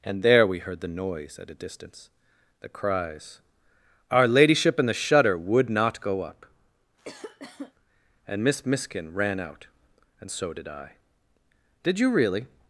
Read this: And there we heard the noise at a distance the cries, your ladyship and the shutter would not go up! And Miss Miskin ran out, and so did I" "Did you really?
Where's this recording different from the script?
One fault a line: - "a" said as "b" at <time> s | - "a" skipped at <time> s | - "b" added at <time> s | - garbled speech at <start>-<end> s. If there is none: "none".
- "your" said as "our" at 4.1 s